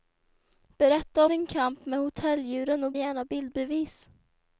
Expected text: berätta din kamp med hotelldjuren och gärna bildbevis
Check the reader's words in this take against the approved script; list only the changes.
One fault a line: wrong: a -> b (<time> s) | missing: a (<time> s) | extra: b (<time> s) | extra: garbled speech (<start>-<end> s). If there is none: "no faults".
no faults